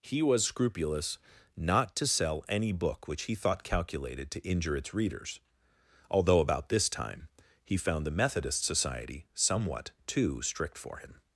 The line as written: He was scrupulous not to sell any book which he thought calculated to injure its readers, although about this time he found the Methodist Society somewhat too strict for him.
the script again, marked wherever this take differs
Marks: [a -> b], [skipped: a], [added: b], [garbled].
He was scrupulous not to sell any book which he thought calculated to injure its readers, although about this time he found the Methodist Society somewhat too strict for him.